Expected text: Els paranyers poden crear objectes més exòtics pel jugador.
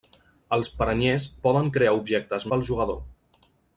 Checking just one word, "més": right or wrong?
wrong